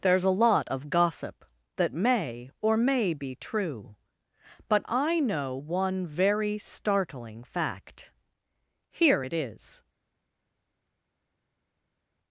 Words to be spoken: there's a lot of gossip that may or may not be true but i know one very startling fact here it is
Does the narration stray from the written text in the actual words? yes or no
yes